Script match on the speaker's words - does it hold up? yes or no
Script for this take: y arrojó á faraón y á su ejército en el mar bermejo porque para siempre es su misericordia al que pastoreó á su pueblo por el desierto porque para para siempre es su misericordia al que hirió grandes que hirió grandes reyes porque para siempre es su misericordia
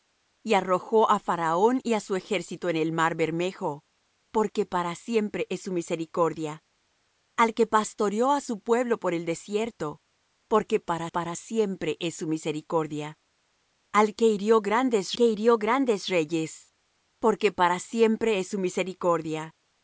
yes